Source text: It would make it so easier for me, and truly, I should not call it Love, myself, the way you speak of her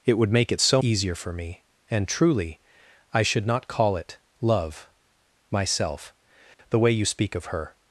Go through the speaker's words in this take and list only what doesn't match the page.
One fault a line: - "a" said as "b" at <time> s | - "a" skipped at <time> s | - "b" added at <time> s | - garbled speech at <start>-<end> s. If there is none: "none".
none